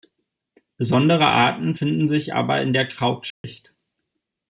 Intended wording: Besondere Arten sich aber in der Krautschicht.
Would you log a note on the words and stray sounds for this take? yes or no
yes